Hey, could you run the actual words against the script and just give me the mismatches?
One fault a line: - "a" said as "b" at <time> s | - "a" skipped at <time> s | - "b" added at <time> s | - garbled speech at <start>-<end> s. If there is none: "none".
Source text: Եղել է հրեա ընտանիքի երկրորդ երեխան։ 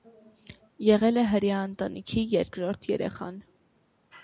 none